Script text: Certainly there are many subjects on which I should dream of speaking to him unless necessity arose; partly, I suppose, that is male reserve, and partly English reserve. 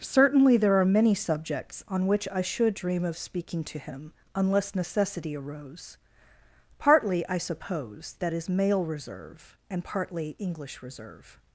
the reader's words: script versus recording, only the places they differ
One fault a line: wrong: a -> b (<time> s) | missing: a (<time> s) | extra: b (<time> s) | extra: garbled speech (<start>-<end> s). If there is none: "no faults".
no faults